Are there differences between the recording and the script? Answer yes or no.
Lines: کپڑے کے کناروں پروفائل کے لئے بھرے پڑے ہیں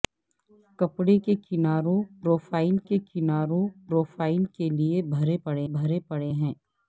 yes